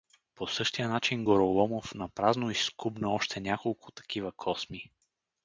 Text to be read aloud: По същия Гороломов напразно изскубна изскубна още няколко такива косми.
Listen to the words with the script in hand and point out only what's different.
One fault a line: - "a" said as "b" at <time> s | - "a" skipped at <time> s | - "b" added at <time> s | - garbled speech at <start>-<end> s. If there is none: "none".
- "начин" added at 0.9 s
- "изскубна" skipped at 3.1 s